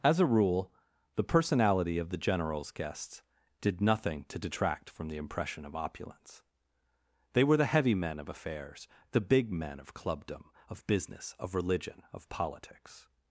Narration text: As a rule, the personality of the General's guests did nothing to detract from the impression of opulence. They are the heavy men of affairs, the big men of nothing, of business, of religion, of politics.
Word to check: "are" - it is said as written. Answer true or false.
false